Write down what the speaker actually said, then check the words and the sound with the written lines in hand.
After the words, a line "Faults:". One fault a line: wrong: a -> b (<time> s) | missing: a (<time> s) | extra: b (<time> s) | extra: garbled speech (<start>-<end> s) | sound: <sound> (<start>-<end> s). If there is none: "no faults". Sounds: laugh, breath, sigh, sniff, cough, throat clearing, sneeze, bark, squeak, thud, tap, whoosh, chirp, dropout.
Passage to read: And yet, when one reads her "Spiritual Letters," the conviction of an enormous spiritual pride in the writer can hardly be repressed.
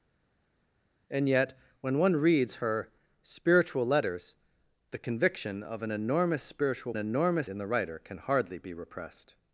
And yet, when one reads her "Spiritual Letters," the conviction of an enormous spiritual enormous in the writer can hardly be repressed.
Faults:
wrong: pride -> enormous (7.0 s)